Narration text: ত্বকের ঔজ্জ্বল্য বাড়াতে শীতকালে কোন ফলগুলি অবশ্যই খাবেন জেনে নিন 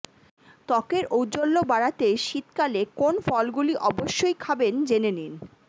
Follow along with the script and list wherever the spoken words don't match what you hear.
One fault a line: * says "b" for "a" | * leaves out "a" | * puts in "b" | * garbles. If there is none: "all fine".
all fine